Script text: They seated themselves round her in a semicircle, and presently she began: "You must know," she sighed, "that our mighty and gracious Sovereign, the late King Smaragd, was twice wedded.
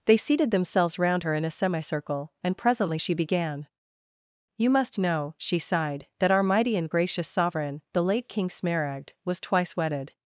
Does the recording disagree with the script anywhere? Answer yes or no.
no